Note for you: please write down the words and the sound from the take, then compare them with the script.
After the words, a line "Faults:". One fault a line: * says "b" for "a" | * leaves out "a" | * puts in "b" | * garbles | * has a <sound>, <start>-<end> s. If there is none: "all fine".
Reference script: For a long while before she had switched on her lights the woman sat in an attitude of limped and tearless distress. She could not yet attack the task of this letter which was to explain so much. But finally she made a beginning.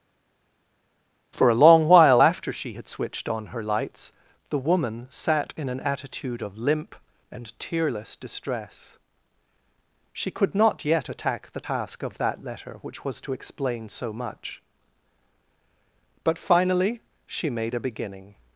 For a long while after she had switched on her lights the woman sat in an attitude of limp and tearless distress. She could not yet attack the task of that letter which was to explain so much. But finally she made a beginning.
Faults:
* says "after" for "before"
* says "limp" for "limped"
* says "that" for "this"